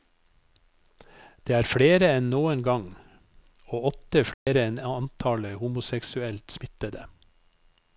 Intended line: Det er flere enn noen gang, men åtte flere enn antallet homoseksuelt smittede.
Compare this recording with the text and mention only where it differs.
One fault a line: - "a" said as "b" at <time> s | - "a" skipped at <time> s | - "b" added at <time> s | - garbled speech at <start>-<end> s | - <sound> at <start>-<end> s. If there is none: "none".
- "men" said as "og" at 3.7 s
- dropout at 4.3-4.5 s